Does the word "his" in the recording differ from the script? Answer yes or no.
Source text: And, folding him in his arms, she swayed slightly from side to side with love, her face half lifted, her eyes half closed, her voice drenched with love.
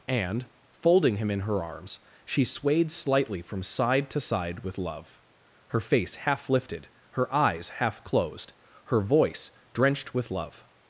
yes